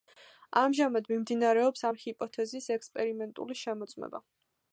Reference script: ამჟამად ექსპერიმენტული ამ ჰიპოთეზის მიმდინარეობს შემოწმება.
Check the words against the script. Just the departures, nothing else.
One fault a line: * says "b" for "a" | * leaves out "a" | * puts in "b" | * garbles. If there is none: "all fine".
* says "მიმდინარეობს" for "ექსპერიმენტული"
* says "ექსპერიმენტული" for "მიმდინარეობს"